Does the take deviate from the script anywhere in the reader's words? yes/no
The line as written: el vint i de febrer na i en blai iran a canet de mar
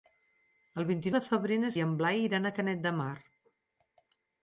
no